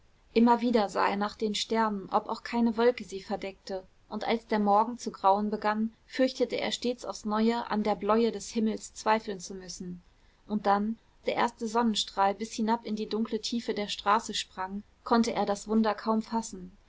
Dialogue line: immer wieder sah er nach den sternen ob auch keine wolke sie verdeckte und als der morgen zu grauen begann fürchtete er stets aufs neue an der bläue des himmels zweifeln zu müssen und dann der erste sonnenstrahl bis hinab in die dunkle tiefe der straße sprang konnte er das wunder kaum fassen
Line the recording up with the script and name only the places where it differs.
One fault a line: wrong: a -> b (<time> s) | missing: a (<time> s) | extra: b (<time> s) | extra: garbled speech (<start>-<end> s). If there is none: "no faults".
no faults